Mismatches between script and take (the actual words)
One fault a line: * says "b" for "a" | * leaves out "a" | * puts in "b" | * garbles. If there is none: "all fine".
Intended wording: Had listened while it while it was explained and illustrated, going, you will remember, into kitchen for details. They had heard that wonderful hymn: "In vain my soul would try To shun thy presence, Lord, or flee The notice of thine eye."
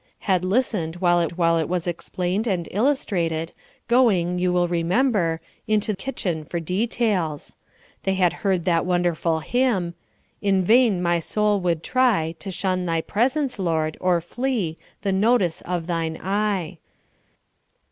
all fine